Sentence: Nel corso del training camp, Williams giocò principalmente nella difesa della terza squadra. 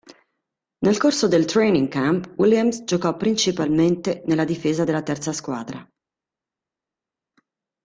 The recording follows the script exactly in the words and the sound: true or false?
true